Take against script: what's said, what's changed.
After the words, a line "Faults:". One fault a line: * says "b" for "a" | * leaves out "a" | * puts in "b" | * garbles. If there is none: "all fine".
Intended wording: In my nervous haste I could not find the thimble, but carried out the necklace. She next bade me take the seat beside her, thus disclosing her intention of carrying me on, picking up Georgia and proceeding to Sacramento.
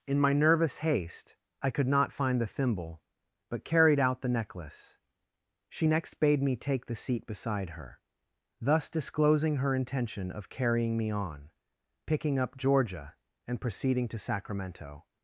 In my nervous haste I could not find the thimble, but carried out the necklace. She next bade me take the seat beside her, thus disclosing her intention of carrying me on, picking up Georgia and proceeding to Sacramento.
Faults:
all fine